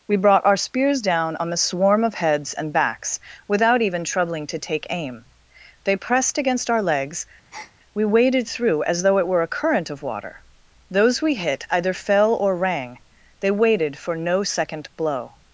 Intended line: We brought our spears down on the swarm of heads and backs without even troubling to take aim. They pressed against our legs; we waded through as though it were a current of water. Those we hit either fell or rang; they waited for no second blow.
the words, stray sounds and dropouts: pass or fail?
fail